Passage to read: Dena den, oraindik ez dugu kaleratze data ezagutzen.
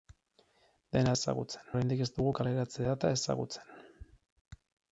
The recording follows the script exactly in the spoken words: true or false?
false